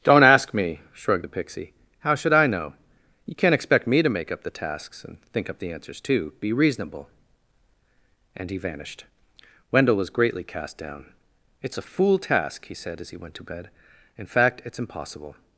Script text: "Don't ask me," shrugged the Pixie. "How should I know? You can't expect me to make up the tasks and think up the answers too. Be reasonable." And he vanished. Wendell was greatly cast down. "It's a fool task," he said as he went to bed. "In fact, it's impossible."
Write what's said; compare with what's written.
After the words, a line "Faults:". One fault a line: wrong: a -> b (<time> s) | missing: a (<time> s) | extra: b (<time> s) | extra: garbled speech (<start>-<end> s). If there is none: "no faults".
"Don't ask me," shrugged the Pixie. "How should I know? You can't expect me to make up the tasks and think up the answers too. Be reasonable." And he vanished. Wendell was greatly cast down. "It's a fool task," he said as he went to bed. "In fact, it's impossible."
Faults:
no faults